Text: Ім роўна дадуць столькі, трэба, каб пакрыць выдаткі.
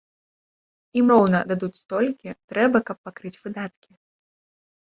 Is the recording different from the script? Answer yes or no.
no